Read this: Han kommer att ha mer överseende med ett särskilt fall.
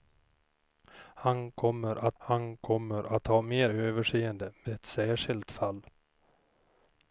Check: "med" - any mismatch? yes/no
yes